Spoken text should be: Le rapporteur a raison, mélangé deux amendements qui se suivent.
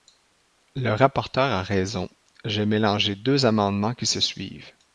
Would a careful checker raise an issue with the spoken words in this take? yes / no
yes